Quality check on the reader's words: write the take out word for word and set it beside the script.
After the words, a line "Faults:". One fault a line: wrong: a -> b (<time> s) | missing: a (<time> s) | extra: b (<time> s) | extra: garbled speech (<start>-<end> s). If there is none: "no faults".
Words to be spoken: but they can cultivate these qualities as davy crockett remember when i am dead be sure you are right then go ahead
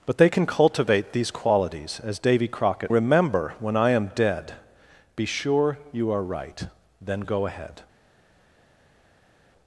but they can cultivate these qualities as davy crockett remember when i am dead be sure you are right then go ahead
Faults:
no faults